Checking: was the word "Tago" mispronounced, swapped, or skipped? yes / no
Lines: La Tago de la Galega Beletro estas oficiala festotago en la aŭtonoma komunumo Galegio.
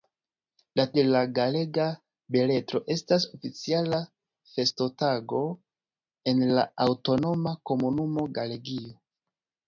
yes